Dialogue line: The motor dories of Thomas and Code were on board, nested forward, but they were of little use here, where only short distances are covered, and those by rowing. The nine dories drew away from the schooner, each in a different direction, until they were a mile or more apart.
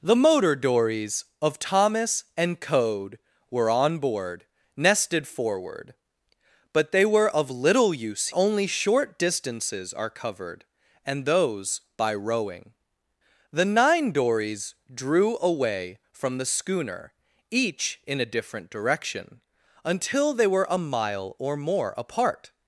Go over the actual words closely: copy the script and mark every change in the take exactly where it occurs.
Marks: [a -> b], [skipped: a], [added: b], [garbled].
The motor dories of Thomas and Code were on board, nested forward, but they were of little use [skipped: here, where] only short distances are covered, and those by rowing. The nine dories drew away from the schooner, each in a different direction, until they were a mile or more apart.